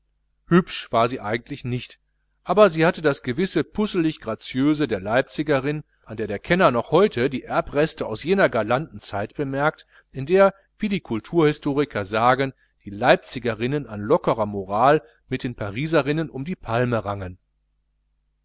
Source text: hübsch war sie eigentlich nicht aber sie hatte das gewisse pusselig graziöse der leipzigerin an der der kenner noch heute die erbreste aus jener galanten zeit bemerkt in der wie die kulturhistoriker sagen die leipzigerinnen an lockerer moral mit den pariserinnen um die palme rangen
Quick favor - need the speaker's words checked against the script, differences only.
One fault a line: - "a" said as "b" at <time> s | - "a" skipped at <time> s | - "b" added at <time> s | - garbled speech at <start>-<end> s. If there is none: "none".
none